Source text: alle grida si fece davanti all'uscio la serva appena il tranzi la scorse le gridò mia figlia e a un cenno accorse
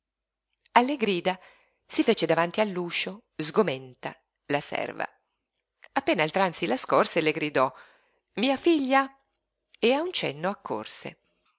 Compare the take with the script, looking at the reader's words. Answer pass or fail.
fail